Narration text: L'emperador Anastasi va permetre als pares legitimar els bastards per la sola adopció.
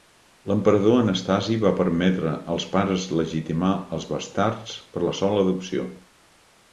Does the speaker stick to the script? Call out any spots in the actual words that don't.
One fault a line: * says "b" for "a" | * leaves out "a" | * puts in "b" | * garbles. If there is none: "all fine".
all fine